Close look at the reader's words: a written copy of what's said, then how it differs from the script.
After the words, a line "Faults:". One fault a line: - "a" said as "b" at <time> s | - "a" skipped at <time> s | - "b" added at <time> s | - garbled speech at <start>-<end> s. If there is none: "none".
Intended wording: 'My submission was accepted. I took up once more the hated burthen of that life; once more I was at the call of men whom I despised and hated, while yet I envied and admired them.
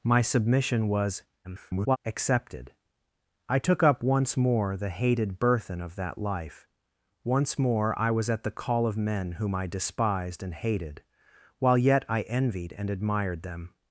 'My submission was [garbled] accepted. I took up once more the hated burthen of that life; once more I was at the call of men whom I despised and hated, while yet I envied and admired them.
Faults:
- garbled speech at 1.4-2.0 s